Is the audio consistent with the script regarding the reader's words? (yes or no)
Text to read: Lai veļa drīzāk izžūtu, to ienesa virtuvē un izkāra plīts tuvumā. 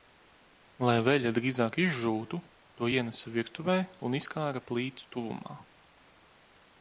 yes